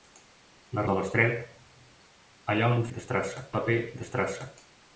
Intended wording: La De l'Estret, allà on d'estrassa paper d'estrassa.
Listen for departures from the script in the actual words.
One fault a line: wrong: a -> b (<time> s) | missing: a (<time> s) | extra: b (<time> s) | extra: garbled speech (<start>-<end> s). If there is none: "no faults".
no faults